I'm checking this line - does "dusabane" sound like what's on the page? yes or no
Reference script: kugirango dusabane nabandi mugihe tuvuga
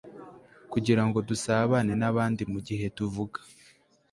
yes